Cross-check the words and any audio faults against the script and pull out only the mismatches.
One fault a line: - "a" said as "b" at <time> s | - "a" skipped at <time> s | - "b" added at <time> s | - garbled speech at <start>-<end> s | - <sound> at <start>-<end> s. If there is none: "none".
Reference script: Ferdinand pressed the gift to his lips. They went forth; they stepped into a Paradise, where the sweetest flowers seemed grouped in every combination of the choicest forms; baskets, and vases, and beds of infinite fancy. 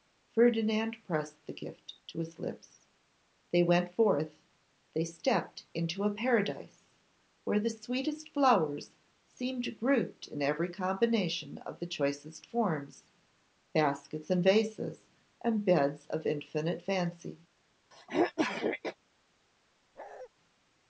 - throat clearing at 17.9-19.0 s
- bark at 19.9-20.3 s